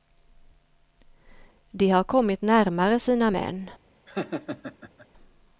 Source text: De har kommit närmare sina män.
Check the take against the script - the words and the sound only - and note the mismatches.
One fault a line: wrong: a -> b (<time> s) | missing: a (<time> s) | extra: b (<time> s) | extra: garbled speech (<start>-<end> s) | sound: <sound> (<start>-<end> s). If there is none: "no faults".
sound: laugh (4.1-5.1 s)